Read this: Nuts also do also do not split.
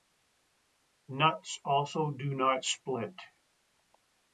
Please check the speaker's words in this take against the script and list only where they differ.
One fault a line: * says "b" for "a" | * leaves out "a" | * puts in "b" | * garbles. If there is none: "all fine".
* leaves out "also do"